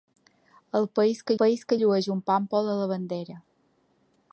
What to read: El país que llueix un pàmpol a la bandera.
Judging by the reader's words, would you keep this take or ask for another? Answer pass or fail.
fail